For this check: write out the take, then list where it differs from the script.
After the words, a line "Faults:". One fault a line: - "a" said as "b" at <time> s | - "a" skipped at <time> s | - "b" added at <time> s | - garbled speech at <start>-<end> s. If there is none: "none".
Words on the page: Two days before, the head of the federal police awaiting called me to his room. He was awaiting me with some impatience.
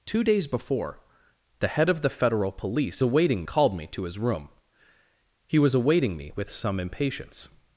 Two days before, the head of the federal police awaiting called me to his room. He was awaiting me with some impatience.
Faults:
none